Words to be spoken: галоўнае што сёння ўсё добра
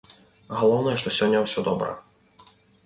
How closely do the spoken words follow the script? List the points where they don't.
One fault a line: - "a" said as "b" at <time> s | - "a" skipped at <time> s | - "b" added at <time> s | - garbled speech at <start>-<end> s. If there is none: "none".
none